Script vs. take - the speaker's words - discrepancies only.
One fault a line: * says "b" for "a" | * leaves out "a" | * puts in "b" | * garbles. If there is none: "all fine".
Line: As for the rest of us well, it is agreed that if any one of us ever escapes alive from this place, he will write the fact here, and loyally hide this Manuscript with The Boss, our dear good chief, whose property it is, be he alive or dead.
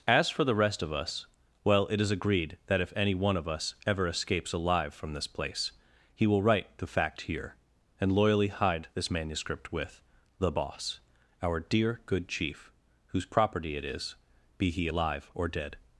all fine